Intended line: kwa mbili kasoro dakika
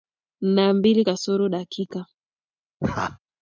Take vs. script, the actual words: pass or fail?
fail